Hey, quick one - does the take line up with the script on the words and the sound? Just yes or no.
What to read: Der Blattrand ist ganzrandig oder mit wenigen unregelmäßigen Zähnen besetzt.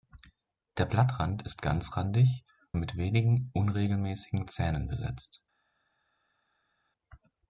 no